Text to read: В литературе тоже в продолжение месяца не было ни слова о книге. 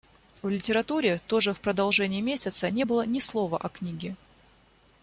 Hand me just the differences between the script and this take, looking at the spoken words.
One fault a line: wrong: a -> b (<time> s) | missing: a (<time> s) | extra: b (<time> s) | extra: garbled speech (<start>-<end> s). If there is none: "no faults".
no faults